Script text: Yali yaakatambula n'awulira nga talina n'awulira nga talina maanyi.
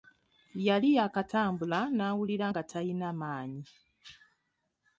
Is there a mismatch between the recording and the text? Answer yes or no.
yes